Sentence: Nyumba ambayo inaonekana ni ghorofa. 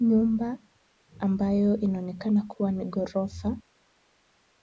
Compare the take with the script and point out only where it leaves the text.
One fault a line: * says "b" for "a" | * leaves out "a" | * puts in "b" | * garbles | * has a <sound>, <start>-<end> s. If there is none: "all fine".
* puts in "kuwa"